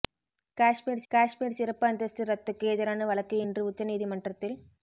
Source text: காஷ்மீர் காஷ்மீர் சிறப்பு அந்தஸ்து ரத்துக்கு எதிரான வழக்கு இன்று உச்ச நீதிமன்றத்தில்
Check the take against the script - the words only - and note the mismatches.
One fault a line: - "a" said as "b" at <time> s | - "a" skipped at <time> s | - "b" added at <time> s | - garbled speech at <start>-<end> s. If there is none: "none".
none